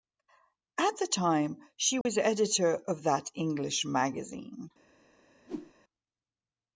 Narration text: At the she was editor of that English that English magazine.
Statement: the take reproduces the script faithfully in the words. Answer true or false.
false